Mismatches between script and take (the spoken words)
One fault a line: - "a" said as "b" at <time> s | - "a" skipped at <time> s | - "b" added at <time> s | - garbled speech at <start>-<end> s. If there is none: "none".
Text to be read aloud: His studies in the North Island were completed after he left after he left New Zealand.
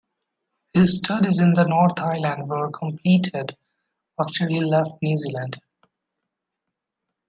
- "after he left" skipped at 4.9 s